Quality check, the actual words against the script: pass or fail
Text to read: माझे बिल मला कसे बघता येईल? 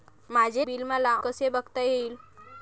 pass